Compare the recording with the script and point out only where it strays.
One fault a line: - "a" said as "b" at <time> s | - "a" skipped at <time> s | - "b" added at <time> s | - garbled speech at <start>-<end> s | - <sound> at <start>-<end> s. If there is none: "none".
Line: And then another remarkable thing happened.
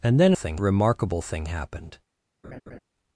- "another" said as "thing" at 0.3 s
- laugh at 2.4-2.8 s